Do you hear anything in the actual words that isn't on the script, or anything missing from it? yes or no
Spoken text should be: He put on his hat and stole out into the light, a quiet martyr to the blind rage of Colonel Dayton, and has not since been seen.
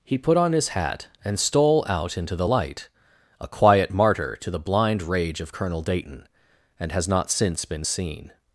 no